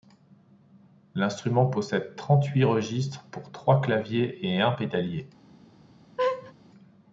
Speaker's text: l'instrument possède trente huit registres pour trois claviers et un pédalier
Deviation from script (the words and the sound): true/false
true